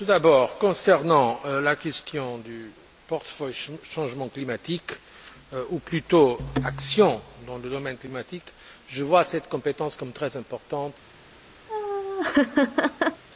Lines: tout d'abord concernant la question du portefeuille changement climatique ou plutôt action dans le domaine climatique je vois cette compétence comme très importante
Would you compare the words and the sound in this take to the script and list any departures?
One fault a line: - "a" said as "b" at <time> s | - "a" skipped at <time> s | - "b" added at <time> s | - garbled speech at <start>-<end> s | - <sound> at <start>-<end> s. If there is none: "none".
- laugh at 11.7-13.2 s